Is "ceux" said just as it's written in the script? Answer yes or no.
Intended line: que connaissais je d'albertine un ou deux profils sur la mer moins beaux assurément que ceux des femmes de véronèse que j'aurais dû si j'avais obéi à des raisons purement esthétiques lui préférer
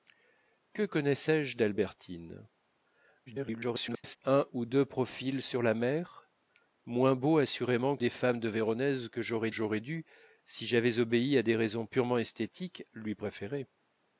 no